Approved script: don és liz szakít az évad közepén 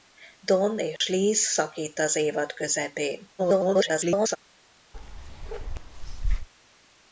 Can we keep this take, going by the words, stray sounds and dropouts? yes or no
no